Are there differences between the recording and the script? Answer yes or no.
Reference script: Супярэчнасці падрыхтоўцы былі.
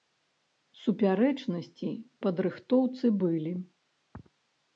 no